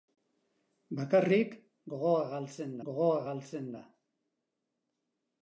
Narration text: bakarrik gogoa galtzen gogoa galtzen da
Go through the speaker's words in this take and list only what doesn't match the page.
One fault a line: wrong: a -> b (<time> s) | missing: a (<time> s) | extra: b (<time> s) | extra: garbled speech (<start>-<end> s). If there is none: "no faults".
no faults